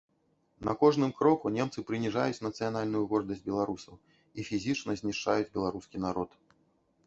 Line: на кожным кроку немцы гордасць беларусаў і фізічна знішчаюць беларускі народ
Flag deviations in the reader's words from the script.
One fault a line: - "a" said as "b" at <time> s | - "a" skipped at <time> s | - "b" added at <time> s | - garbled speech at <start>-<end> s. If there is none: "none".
- "прыніжаюць нацыянальную" added at 1.9 s